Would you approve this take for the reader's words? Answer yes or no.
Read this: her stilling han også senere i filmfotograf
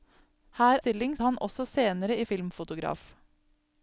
yes